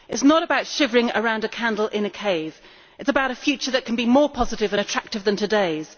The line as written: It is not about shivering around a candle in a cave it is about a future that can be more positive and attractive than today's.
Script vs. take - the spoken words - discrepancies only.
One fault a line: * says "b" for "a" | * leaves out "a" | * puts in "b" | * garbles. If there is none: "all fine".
all fine